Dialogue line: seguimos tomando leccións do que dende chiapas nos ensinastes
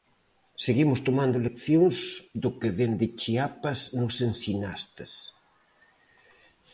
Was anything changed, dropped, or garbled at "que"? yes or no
no